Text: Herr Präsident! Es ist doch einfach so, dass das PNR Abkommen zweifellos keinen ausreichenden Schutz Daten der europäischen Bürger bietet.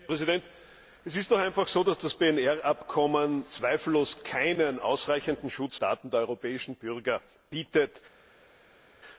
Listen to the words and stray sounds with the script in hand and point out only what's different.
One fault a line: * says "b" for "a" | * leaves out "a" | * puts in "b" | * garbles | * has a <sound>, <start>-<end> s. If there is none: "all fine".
all fine